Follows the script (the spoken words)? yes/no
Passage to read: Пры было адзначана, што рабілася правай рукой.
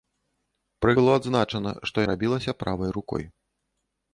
yes